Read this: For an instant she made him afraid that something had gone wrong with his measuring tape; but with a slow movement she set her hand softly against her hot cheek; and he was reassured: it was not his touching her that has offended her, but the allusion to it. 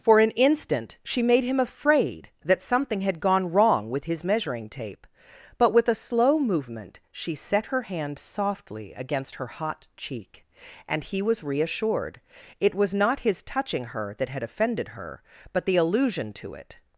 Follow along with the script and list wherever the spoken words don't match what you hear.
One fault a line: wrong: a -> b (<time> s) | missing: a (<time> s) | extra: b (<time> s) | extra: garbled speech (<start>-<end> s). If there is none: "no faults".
wrong: has -> had (14.3 s)